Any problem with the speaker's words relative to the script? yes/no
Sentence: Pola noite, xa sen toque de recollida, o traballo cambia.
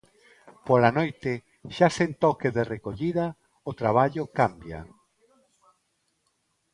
no